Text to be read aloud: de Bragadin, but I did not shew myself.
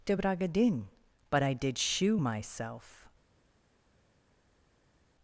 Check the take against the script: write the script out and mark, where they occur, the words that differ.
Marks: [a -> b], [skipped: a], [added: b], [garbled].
de Bragadin, but I did [skipped: not] shew myself.